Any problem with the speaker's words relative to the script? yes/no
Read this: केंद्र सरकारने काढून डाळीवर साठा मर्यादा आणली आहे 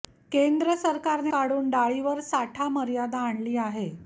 no